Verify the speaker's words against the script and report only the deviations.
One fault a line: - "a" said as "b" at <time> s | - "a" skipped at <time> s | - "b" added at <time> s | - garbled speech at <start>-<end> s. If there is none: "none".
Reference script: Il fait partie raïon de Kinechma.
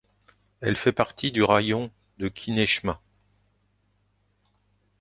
- "Il" said as "Elle" at 0.6 s
- "du" added at 1.3 s